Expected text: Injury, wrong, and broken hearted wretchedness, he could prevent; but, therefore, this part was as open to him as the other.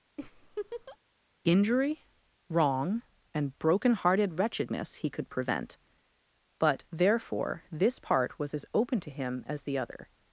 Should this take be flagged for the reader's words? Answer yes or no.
no